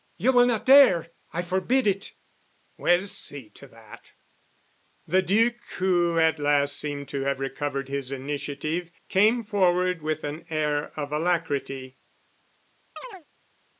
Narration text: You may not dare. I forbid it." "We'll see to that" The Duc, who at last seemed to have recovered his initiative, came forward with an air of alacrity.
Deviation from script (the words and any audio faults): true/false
true